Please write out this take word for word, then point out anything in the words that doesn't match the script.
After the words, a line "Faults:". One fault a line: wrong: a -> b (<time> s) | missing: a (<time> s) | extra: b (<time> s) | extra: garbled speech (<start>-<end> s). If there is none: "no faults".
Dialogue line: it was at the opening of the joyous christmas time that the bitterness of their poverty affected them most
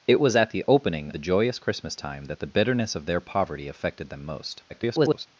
it was at the opening the joyous christmas time that the bitterness of their poverty affected them most [garbled]
Faults:
missing: of (1.1 s)
extra: garbled speech (4.7-5.3 s)